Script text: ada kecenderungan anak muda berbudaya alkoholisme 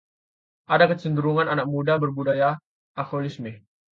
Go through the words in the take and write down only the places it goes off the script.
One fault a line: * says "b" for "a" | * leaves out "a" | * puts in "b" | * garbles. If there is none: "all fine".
all fine